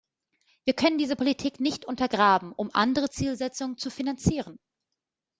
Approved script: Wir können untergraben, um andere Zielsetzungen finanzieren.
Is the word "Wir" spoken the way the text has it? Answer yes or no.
yes